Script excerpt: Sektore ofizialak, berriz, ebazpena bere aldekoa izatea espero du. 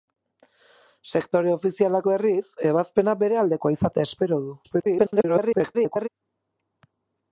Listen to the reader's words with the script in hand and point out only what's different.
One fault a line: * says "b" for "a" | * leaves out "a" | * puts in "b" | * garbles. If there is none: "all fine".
* garbles